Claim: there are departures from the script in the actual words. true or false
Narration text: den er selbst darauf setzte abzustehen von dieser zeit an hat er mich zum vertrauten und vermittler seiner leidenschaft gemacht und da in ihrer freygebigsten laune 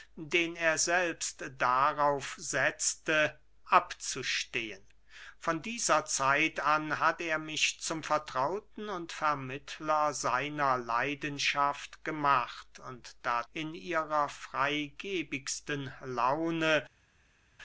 false